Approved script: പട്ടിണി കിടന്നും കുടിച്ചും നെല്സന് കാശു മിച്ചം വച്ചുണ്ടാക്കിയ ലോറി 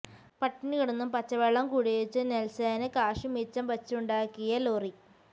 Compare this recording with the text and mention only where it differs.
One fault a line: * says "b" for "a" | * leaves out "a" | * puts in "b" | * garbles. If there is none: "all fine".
* puts in "പച്ചവെള്ളം"